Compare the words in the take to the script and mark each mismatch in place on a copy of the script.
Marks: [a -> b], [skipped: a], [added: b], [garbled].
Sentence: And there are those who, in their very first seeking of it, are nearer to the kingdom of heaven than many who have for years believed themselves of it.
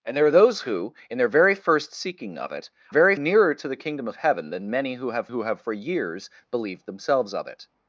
And there are those who, in their very first seeking of it, [are -> very] nearer to the kingdom of heaven than many who have [added: who have] for years believed themselves of it.